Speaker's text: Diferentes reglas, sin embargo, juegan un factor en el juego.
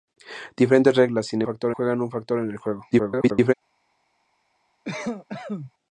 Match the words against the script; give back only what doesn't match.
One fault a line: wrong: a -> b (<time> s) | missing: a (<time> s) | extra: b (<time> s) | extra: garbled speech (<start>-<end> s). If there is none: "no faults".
wrong: embargo -> factor (1.4 s)
extra: garbled speech (2.9-3.5 s)